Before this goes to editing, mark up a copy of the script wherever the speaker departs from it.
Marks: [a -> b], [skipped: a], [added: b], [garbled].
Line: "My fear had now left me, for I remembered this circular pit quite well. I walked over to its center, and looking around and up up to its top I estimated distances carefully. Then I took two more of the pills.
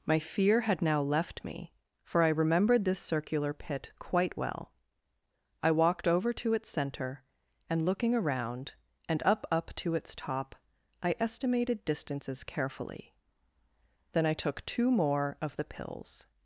"My fear had now left me, for I remembered this circular pit quite well. I walked over to its center, and looking around and up up to its top I estimated distances carefully. Then I took two more of the pills.